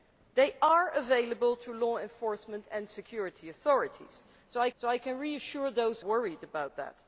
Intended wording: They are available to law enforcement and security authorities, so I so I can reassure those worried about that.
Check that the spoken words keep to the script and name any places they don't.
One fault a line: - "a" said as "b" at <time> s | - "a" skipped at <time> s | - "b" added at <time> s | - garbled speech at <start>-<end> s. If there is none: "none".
none